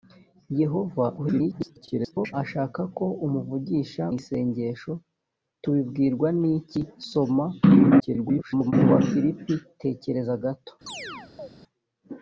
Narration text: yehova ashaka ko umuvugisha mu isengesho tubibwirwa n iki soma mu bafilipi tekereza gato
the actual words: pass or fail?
fail